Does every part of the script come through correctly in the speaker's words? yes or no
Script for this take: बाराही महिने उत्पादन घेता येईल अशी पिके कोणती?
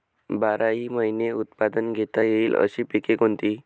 yes